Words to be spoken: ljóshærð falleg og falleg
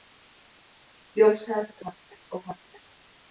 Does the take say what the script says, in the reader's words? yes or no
yes